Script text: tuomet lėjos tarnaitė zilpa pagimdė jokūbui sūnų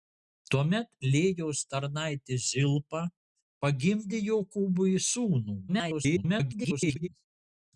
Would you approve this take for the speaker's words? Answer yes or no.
no